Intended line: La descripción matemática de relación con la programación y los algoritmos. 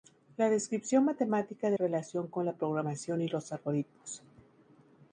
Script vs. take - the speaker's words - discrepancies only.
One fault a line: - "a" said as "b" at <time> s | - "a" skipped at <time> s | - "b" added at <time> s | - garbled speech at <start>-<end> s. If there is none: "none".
none